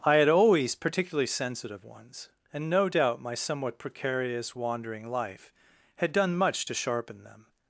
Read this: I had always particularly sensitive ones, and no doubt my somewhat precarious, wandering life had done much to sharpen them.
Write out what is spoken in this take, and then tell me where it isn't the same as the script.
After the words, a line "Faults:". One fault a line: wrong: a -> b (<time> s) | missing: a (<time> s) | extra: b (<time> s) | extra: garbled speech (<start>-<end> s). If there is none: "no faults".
I had always particularly sensitive ones, and no doubt my somewhat precarious, wandering life had done much to sharpen them.
Faults:
no faults